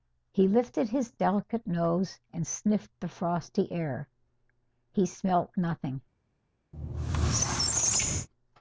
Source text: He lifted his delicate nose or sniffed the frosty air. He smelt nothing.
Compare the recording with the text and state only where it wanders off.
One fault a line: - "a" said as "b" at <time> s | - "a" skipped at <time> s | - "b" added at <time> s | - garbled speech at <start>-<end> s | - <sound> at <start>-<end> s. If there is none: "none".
- "or" said as "and" at 2.3 s
- squeak at 6.7-8.3 s